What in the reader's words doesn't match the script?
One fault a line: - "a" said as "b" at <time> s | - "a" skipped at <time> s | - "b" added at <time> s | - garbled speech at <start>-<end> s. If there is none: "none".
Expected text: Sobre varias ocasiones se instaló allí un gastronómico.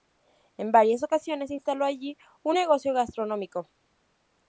- "Sobre" said as "En" at 0.6 s
- "negocio" added at 2.5 s